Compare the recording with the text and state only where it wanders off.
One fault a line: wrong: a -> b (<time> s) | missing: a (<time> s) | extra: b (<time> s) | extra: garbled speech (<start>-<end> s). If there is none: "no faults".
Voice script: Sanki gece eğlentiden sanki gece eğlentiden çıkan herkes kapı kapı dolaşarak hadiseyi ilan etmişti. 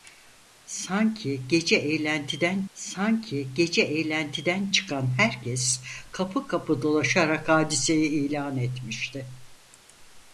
no faults